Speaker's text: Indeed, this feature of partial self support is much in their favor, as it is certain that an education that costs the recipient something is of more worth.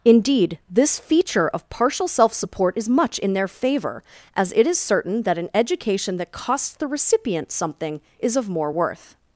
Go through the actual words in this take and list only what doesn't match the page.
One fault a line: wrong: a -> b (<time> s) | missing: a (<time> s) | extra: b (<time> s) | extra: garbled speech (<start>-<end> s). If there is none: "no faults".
no faults